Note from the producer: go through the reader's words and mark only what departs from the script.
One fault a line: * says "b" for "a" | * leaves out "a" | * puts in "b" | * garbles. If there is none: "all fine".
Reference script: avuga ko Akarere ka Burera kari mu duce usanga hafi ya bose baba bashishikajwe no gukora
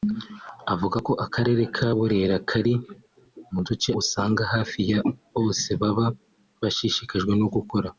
all fine